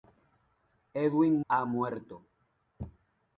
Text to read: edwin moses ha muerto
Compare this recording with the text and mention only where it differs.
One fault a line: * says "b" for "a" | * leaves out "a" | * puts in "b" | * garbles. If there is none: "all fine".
* leaves out "moses"